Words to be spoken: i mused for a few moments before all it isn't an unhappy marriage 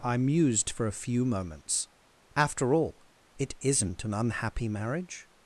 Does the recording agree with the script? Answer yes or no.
no